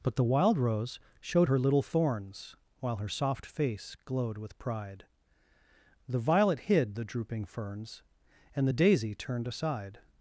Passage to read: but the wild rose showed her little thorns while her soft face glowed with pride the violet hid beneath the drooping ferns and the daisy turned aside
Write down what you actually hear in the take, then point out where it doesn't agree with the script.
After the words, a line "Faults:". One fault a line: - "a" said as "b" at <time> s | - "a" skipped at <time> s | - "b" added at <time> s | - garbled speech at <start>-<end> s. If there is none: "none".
but the wild rose showed her little thorns while her soft face glowed with pride the violet hid the drooping ferns and the daisy turned aside
Faults:
- "beneath" skipped at 6.9 s